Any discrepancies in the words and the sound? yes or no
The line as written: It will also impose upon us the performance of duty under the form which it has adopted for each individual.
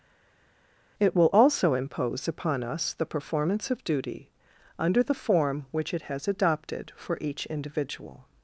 no